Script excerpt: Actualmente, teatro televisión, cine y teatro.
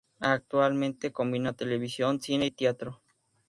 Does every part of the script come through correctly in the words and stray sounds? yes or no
no